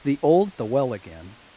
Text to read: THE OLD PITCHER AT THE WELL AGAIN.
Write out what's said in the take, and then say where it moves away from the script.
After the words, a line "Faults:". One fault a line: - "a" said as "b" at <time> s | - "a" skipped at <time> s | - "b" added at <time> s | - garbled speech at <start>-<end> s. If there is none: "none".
THE OLD THE WELL AGAIN.
Faults:
- "PITCHER AT" skipped at 0.6 s